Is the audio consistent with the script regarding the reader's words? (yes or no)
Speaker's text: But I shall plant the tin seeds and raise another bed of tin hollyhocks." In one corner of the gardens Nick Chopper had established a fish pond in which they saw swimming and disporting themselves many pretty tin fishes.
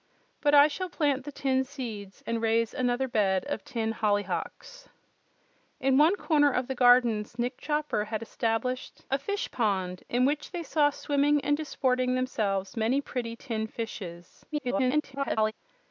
no